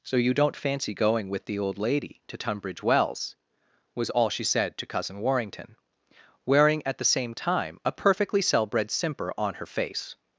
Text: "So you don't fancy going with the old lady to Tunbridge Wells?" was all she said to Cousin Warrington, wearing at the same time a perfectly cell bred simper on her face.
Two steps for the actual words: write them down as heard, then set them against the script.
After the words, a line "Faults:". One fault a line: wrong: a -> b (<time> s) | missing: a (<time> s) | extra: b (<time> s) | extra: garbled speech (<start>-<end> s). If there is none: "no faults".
"So you don't fancy going with the old lady to Tunbridge Wells?" was all she said to Cousin Warrington, wearing at the same time a perfectly cell bred simper on her face.
Faults:
no faults